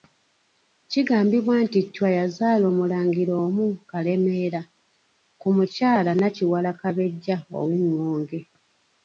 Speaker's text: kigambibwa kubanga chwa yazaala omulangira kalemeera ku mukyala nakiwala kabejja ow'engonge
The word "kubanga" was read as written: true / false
false